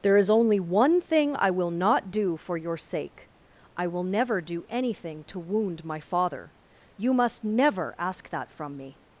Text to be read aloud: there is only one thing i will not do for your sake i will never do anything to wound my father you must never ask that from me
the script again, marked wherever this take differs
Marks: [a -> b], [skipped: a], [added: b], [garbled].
there is only one thing i will not do for your sake i will never do anything to wound my father you must never ask that from me